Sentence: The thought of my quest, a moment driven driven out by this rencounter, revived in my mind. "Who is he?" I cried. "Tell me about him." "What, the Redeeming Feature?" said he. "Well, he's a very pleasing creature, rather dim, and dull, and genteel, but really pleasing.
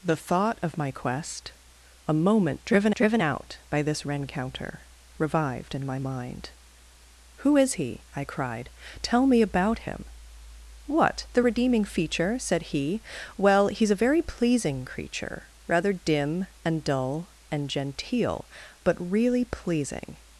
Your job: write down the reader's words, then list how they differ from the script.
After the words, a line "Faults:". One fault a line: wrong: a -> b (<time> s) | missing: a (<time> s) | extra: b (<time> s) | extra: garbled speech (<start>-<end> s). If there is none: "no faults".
The thought of my quest, a moment driven driven out by this rencounter, revived in my mind. "Who is he?" I cried. "Tell me about him." "What, the Redeeming Feature?" said he. "Well, he's a very pleasing creature, rather dim, and dull, and genteel, but really pleasing.
Faults:
no faults